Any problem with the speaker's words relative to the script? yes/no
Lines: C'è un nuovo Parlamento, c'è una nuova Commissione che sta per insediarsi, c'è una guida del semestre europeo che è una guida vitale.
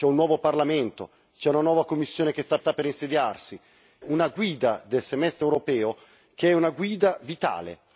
yes